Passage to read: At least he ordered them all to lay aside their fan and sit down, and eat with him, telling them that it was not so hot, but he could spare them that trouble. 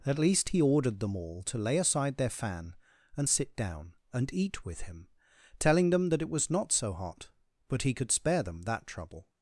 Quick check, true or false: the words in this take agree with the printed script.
true